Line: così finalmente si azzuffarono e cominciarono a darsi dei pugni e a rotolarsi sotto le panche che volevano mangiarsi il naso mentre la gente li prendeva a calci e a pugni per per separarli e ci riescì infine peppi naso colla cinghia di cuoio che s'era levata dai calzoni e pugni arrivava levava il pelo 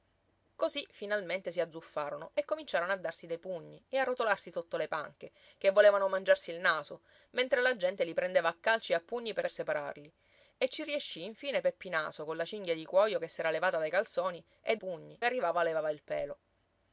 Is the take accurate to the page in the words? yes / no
yes